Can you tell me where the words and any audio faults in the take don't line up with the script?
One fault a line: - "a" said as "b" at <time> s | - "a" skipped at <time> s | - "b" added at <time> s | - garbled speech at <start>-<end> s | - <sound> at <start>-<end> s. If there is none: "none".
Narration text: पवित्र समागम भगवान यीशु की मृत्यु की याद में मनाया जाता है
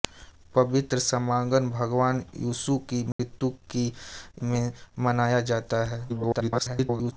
- dropout at 3.1-3.2 s
- "याद" skipped at 3.9 s
- garbled speech at 6.1-7.1 s